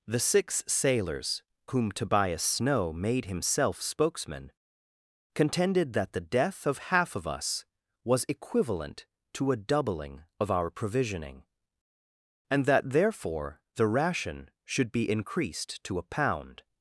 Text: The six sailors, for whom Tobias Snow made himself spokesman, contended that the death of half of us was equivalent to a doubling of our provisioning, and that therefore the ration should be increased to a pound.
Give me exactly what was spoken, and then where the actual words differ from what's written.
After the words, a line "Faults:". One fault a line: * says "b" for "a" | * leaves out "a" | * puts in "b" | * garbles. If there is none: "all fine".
The six sailors, whom Tobias Snow made himself spokesman, contended that the death of half of us was equivalent to a doubling of our provisioning, and that therefore the ration should be increased to a pound.
Faults:
* leaves out "for"